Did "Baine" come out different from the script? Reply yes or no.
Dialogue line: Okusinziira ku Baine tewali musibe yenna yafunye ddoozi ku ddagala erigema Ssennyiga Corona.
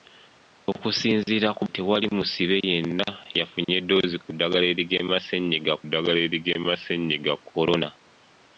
yes